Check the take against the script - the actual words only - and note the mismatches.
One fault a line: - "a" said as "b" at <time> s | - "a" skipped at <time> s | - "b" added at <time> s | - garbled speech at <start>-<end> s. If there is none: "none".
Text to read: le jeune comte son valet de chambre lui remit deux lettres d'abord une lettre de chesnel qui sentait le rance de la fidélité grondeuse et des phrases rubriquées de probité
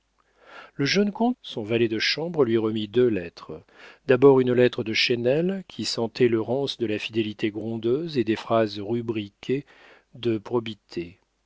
none